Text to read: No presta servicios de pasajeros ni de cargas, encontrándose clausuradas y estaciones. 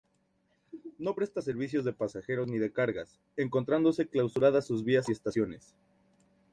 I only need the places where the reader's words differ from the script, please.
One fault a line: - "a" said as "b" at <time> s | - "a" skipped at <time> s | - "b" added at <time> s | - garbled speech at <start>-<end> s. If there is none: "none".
- "sus vías" added at 4.6 s